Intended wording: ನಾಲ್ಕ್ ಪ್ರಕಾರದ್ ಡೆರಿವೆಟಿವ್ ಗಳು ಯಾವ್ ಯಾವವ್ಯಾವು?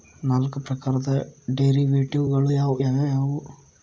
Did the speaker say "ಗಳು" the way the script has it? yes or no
yes